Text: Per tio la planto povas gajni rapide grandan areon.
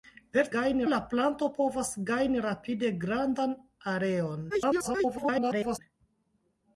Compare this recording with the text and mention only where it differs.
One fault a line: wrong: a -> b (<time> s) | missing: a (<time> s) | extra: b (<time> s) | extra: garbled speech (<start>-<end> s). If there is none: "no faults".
wrong: tio -> gajni (0.5 s)
extra: garbled speech (4.5-5.8 s)